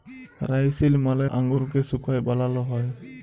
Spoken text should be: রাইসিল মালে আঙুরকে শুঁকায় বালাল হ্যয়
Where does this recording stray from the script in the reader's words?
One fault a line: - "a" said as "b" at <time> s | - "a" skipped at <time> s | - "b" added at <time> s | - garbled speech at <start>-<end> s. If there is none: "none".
none